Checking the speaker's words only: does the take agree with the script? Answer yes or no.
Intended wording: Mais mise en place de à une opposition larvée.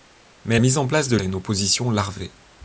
yes